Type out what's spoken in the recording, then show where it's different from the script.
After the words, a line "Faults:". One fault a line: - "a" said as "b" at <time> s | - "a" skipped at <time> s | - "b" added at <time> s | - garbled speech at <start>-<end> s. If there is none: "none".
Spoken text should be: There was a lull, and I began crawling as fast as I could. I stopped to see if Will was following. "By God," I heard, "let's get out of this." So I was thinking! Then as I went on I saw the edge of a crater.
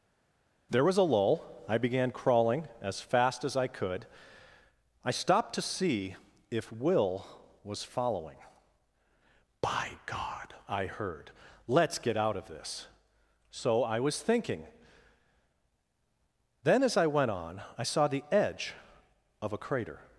There was a lull, I began crawling as fast as I could. I stopped to see if Will was following. "By God," I heard, "let's get out of this." So I was thinking! Then as I went on I saw the edge of a crater.
Faults:
- "and" skipped at 1.4 s